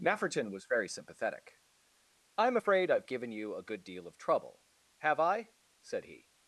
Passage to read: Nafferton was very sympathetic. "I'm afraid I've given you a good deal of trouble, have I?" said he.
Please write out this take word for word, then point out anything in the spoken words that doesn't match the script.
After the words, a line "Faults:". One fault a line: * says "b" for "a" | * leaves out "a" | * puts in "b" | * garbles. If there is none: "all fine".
Nafferton was very sympathetic. "I'm afraid I've given you a good deal of trouble, have I?" said he.
Faults:
all fine